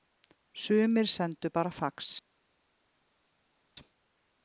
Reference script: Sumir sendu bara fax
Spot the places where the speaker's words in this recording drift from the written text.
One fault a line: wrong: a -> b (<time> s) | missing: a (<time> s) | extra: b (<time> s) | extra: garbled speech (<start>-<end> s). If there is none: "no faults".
no faults